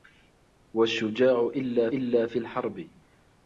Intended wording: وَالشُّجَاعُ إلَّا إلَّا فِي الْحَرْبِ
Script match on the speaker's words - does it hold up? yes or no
yes